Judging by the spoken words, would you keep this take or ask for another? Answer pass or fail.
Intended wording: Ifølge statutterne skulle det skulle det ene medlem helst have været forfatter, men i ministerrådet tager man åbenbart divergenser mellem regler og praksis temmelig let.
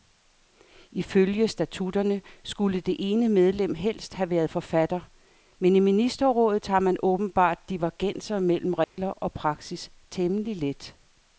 fail